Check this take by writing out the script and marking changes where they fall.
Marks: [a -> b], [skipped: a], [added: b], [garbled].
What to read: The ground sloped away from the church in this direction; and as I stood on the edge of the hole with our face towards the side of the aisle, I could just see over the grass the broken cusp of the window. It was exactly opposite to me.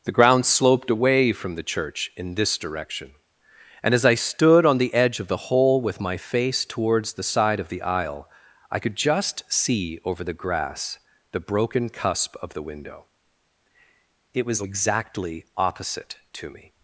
The ground sloped away from the church in this direction; and as I stood on the edge of the hole with [our -> my] face towards the side of the aisle, I could just see over the grass the broken cusp of the window. It was exactly opposite to me.